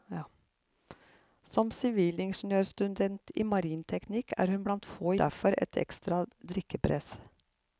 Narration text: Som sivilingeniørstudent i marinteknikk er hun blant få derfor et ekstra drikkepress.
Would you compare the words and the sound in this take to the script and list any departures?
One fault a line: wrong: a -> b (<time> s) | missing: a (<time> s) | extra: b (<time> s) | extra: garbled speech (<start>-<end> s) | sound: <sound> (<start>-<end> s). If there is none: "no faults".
no faults